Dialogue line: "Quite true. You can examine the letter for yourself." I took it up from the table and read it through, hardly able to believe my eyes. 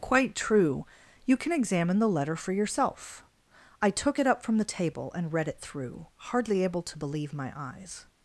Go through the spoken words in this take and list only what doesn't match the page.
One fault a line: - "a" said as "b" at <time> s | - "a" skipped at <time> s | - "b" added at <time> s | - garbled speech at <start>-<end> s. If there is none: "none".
none